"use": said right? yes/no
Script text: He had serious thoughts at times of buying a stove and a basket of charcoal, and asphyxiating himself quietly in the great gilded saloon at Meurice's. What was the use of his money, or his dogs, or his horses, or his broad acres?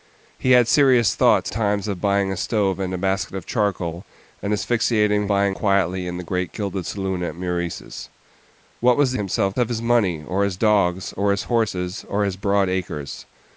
no